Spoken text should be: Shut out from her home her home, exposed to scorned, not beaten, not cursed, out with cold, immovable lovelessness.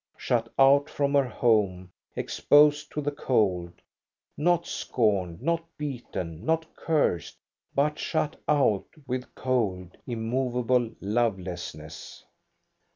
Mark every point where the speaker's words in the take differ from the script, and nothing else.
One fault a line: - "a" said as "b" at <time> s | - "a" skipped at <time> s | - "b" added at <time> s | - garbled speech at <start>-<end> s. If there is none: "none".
- "her home exposed to" said as "exposed to the cold not" at 2.1 s
- "but shut" added at 7.7 s